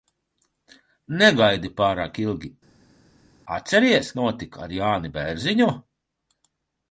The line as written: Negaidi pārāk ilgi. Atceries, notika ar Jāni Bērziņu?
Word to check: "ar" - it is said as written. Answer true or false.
true